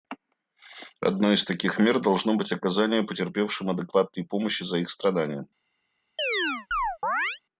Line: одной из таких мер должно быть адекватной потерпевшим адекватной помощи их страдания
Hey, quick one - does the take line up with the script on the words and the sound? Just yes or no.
no